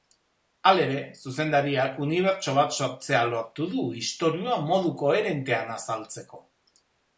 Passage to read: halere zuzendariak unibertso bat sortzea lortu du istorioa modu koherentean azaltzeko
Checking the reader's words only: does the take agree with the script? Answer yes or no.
yes